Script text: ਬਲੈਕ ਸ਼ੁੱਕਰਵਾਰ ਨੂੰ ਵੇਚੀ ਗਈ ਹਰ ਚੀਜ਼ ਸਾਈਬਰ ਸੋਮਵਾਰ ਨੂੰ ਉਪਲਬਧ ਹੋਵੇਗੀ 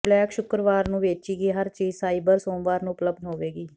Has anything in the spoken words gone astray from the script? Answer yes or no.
no